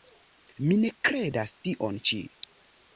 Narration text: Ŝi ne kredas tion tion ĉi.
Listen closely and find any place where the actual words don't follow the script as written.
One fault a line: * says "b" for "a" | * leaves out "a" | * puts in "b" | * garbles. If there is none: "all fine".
* says "Mi" for "Ŝi"
* leaves out "tion"